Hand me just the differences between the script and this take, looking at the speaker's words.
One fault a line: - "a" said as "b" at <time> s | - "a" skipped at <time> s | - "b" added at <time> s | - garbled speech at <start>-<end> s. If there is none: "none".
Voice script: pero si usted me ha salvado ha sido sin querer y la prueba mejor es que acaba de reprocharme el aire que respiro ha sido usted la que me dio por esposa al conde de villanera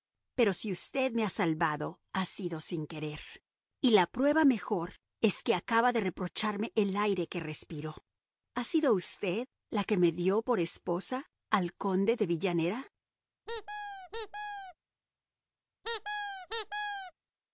none